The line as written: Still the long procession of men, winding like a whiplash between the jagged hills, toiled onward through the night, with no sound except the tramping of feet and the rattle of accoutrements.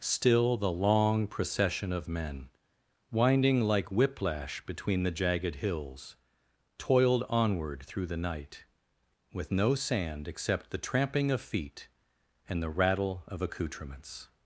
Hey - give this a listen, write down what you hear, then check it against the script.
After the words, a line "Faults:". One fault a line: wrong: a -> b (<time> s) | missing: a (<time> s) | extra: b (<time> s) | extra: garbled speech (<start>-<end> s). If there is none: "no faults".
Still the long procession of men, winding like whiplash between the jagged hills, toiled onward through the night, with no sand except the tramping of feet and the rattle of accoutrements.
Faults:
missing: a (3.9 s)
wrong: sound -> sand (9.8 s)